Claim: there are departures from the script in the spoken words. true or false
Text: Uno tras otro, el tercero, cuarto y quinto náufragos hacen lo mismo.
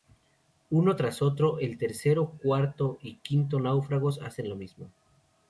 false